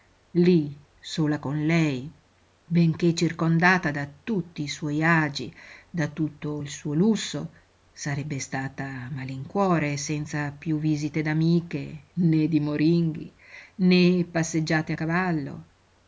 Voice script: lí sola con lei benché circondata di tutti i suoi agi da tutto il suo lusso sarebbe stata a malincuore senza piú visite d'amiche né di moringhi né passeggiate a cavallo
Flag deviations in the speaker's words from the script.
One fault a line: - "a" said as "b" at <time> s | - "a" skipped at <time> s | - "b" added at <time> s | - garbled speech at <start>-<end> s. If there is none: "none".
- "di" said as "da" at 3.9 s